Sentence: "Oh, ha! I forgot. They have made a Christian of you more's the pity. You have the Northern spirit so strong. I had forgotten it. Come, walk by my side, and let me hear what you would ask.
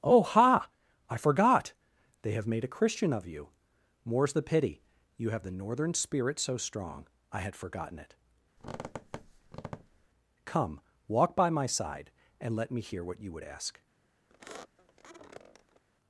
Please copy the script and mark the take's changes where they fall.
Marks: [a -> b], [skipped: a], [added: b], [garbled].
"Oh, ha! I forgot. They have made a Christian of you more's the pity. You have the Northern spirit so strong. I had forgotten it. Come, walk by my side, and let me hear what you would ask.